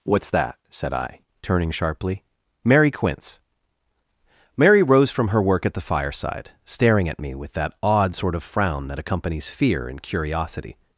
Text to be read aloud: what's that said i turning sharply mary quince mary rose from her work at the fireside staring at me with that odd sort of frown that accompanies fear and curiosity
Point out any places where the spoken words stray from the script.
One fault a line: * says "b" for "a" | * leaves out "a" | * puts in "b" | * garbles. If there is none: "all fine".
all fine